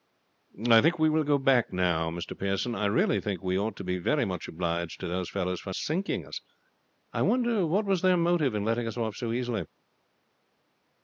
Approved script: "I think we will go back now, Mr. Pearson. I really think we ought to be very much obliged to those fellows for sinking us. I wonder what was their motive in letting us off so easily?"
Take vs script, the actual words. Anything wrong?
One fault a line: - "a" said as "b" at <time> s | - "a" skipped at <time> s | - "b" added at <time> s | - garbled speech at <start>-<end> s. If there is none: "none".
none